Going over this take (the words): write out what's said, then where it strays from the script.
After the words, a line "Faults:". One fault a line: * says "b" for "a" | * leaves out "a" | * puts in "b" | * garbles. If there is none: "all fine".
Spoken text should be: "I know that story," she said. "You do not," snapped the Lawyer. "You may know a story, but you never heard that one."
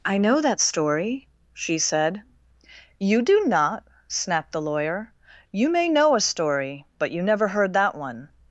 "I know that story," she said. "You do not," snapped the Lawyer. "You may know a story, but you never heard that one."
Faults:
all fine